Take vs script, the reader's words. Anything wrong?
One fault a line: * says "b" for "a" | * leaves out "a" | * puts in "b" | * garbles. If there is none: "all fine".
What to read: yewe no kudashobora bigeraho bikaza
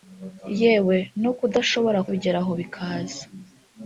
all fine